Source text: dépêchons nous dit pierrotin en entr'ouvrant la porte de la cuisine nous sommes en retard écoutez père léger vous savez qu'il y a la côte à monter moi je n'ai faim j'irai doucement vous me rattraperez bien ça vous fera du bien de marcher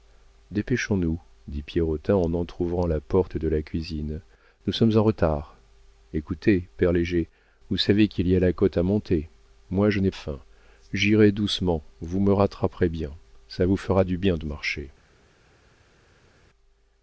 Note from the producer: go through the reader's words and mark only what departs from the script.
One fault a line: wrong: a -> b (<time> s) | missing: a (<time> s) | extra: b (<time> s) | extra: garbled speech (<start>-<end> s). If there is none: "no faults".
no faults